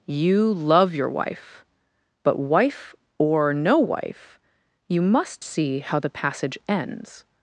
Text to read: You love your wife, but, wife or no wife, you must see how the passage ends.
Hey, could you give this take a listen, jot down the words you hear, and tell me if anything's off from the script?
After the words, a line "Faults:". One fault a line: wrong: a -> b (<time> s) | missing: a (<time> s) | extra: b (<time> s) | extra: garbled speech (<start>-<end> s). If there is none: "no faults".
You love your wife, but, wife or no wife, you must see how the passage ends.
Faults:
no faults